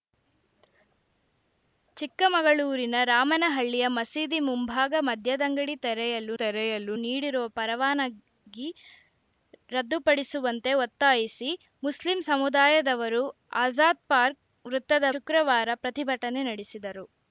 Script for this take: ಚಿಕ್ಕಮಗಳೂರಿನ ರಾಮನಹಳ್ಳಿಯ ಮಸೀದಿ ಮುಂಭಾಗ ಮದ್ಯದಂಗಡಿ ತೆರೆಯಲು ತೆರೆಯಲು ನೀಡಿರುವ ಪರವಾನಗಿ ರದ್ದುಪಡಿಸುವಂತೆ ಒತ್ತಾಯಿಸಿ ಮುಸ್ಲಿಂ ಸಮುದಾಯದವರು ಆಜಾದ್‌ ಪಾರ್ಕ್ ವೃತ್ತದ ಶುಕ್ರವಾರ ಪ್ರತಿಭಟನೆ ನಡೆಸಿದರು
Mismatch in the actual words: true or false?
false